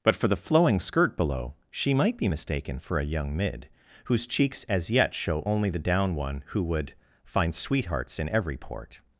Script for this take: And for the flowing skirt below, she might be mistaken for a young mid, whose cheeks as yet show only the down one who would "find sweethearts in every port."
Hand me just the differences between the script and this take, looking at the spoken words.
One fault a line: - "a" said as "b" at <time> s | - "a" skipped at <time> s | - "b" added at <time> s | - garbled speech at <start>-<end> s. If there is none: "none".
- "And" said as "But" at 0.0 s